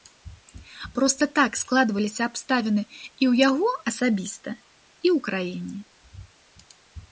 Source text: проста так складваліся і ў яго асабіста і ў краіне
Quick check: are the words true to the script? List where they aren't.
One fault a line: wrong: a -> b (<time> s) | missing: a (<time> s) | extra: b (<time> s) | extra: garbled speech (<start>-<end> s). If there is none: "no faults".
extra: абставіны (2.3 s)